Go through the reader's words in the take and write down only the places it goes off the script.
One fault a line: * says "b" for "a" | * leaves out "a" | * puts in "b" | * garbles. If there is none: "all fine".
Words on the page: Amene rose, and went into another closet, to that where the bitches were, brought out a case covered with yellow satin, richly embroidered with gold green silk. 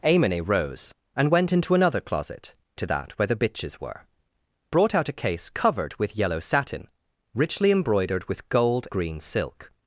all fine